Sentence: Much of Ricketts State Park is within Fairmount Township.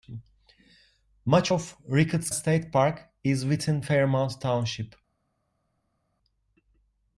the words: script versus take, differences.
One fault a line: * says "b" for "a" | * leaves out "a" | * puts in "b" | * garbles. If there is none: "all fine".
all fine